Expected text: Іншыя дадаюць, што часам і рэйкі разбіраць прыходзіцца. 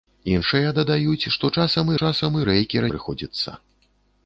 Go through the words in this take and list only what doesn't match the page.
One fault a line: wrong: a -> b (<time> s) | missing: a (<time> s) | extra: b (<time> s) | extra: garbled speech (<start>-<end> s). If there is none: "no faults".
extra: часам (2.0 s)
missing: разбіраць (2.9 s)